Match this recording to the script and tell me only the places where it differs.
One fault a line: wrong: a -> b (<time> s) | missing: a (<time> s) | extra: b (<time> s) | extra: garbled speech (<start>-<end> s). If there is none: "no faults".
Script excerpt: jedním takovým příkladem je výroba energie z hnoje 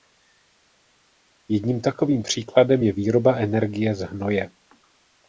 no faults